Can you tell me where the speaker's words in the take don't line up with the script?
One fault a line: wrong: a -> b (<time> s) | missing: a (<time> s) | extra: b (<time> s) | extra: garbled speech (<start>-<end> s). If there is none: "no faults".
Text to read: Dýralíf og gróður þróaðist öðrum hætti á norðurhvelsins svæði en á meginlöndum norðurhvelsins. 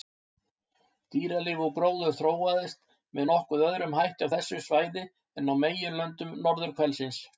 extra: með nokkuð (3.2 s)
wrong: norðurhvelsins -> þessu (4.3 s)